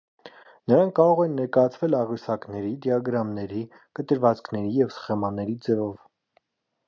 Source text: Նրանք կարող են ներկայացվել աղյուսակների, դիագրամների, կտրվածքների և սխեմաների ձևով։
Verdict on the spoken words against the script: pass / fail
pass